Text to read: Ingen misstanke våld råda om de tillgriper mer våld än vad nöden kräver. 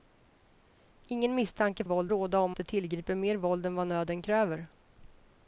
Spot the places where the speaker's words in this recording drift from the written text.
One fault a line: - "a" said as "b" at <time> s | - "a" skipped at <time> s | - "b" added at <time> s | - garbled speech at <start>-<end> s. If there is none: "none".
none